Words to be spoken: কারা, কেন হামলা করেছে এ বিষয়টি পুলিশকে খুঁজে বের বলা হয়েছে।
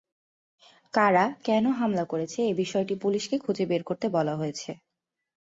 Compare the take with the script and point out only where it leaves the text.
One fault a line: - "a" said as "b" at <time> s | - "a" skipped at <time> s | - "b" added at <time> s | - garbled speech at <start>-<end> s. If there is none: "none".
- "করতে" added at 3.8 s